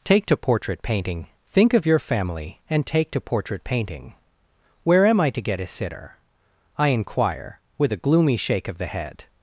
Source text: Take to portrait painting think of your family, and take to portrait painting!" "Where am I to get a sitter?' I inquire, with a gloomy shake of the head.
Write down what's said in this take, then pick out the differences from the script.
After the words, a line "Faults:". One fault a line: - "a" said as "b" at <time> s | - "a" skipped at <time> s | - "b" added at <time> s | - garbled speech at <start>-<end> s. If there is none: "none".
Take to portrait painting think of your family, and take to portrait painting!" "Where am I to get a sitter?' I inquire, with a gloomy shake of the head.
Faults:
none